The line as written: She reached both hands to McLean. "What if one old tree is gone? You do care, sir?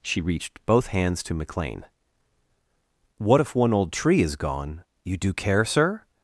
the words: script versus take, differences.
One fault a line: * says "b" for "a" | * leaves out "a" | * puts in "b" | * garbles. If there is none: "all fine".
all fine